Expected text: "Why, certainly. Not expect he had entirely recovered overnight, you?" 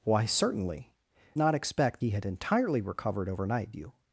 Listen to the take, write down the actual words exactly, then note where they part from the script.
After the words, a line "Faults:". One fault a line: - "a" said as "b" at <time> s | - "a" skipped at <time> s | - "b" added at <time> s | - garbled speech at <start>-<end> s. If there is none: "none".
"Why, certainly. Not expect he had entirely recovered overnight, you?"
Faults:
none